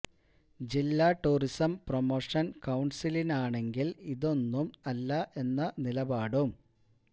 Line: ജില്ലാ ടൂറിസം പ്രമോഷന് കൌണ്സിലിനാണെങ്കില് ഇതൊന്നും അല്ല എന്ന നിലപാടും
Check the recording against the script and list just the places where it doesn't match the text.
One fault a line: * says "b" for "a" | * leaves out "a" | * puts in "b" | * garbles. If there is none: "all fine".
all fine